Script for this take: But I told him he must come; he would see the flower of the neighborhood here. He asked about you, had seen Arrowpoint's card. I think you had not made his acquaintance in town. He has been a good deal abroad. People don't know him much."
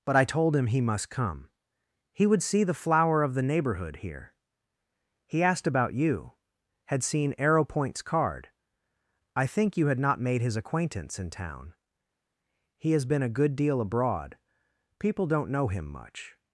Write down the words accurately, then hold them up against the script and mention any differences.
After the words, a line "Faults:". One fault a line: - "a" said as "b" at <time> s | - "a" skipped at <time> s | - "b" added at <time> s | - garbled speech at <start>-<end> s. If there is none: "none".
But I told him he must come; he would see the flower of the neighborhood here. He asked about you, had seen Arrowpoint's card. I think you had not made his acquaintance in town. He has been a good deal abroad. People don't know him much."
Faults:
none